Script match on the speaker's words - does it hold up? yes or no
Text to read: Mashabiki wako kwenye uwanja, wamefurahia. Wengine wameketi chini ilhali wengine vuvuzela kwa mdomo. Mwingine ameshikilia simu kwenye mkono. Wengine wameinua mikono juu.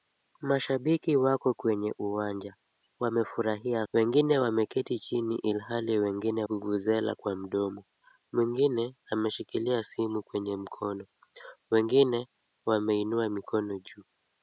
yes